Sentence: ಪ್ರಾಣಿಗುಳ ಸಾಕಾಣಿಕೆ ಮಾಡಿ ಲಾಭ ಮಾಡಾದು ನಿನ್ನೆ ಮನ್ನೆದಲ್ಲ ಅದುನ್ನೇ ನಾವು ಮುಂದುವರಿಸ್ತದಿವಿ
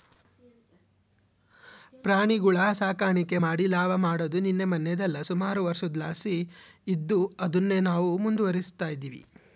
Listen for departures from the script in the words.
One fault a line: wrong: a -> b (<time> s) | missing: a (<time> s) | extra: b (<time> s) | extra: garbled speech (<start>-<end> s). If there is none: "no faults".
extra: ಸುಮಾರು ವರ್ಷುದ್ಲಾಸಿ ಇದ್ದು (5.3 s)